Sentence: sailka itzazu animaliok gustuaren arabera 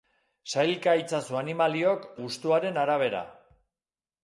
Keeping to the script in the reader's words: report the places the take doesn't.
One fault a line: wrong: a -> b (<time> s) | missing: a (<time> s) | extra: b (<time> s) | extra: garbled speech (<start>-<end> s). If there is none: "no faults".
no faults